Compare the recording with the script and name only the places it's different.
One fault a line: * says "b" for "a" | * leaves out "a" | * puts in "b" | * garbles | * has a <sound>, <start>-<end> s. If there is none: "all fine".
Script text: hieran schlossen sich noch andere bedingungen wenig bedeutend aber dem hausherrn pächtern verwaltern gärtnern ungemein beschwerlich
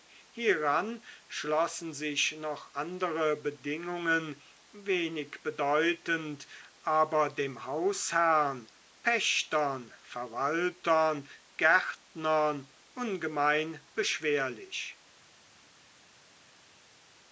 all fine